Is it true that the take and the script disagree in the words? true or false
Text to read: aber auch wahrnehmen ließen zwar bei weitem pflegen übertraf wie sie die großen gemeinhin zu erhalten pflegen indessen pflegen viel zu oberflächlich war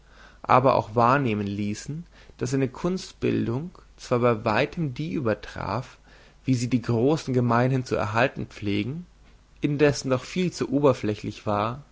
true